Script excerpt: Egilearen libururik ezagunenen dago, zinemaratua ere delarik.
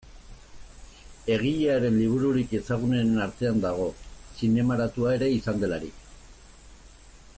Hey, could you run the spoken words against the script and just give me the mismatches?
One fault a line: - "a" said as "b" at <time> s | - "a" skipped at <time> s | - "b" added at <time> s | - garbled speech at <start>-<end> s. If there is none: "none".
- "artean" added at 3.3 s
- "izan" added at 5.4 s